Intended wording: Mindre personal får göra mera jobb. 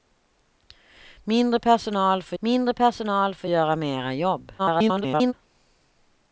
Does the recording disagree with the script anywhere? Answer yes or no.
yes